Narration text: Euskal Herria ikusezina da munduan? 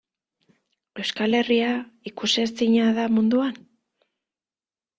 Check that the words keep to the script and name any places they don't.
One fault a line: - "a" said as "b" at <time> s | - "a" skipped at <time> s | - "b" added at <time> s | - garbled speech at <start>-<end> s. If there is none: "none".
none